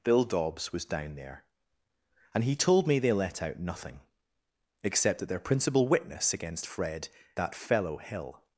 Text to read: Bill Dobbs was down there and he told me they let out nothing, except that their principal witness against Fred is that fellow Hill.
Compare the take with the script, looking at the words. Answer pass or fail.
fail